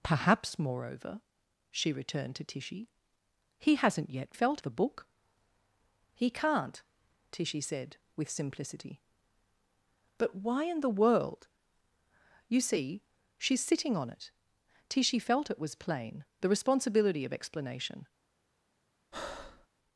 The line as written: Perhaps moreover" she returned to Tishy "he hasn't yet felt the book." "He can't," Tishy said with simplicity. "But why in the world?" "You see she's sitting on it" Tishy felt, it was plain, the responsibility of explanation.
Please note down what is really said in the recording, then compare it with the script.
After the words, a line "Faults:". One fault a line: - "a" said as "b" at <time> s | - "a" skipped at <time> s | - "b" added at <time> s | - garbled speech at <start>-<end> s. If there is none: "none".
Perhaps moreover" she returned to Tishy "he hasn't yet felt the book." "He can't," Tishy said with simplicity. "But why in the world?" "You see she's sitting on it" Tishy felt, it was plain, the responsibility of explanation.
Faults:
none